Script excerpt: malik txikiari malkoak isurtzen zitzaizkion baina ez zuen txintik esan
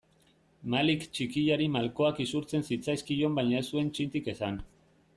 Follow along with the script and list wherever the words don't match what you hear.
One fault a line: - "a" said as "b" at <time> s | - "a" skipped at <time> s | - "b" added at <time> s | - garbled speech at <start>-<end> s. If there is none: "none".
none